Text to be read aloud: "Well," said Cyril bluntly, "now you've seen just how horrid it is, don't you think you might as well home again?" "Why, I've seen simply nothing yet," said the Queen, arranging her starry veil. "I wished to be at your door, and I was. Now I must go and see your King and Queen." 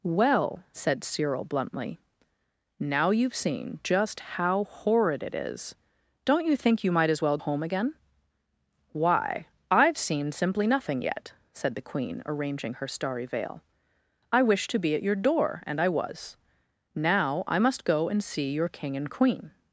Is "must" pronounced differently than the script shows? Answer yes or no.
no